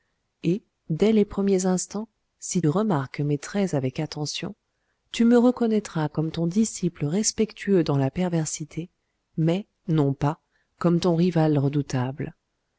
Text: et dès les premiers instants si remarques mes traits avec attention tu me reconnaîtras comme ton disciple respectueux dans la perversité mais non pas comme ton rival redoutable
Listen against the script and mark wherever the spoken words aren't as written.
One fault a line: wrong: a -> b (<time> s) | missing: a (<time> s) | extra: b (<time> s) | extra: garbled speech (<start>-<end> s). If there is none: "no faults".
no faults